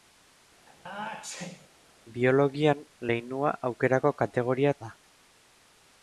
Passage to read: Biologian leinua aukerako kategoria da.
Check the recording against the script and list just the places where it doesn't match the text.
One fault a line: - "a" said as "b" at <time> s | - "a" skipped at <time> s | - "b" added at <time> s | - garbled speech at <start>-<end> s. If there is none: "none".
none